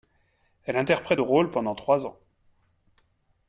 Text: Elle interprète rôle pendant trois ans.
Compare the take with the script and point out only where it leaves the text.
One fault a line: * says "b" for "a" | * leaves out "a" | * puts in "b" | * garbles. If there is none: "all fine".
all fine